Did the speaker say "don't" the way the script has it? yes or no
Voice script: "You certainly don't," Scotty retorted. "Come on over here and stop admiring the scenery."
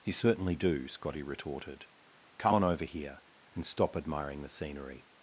no